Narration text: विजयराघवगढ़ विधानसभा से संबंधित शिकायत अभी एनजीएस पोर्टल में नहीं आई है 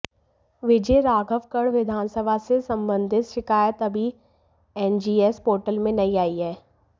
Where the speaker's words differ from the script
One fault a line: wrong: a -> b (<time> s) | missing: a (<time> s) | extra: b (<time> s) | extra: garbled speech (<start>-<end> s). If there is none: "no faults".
no faults